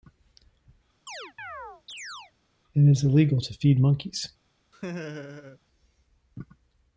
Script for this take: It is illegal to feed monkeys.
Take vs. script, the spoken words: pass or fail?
pass